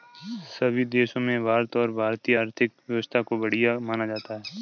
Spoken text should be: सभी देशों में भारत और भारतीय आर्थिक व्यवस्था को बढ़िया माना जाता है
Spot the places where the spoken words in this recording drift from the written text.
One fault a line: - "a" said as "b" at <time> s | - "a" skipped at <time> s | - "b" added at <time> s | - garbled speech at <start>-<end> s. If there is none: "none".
none